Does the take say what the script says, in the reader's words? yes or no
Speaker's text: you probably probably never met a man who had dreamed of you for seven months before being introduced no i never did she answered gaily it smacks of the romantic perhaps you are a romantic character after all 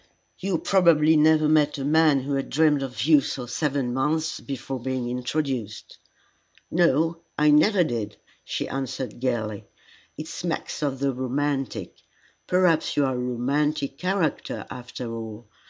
no